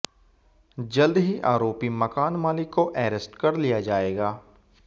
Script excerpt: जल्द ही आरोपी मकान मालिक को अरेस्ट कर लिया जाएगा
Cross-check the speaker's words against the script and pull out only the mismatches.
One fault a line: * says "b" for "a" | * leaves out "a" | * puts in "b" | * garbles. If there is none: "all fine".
all fine